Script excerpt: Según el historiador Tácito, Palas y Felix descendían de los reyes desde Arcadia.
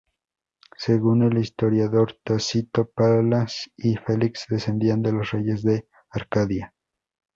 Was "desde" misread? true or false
true